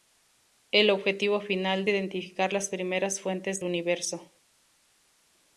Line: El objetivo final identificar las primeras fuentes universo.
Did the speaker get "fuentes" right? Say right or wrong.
right